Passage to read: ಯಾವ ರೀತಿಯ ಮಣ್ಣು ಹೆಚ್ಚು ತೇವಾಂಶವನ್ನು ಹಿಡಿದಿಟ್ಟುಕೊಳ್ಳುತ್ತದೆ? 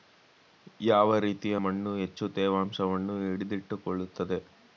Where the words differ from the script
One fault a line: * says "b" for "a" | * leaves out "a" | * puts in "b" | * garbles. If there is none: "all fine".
all fine